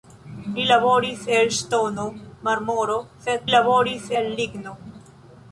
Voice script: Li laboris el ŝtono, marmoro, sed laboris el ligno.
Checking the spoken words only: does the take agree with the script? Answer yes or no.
yes